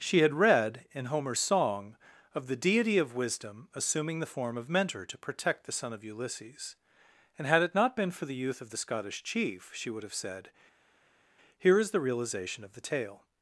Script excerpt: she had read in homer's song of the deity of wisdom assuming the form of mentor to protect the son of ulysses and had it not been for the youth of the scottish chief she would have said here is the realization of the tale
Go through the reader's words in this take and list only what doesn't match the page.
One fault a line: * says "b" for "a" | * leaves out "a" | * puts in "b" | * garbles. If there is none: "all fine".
all fine